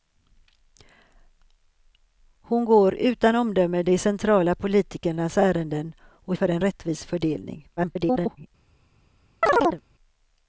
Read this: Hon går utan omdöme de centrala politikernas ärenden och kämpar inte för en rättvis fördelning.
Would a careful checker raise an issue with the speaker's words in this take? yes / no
yes